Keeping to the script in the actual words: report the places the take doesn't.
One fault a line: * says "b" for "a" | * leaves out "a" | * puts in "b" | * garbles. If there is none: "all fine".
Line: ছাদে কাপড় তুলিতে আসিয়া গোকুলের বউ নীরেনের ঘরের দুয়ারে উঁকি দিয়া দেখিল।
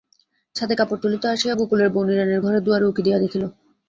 all fine